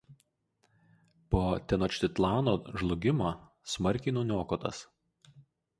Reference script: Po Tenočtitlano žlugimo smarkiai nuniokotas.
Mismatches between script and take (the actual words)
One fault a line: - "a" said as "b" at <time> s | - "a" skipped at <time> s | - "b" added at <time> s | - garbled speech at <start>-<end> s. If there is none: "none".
none